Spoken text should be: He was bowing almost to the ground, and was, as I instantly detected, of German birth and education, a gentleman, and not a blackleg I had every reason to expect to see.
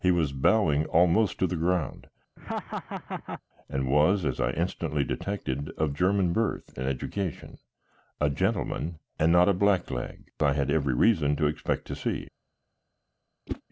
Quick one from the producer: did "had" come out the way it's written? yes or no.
yes